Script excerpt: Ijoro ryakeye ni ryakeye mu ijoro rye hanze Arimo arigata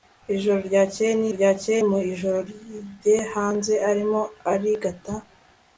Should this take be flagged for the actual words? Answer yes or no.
no